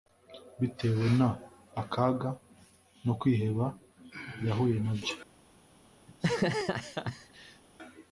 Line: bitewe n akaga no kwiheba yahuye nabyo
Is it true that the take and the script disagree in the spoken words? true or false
false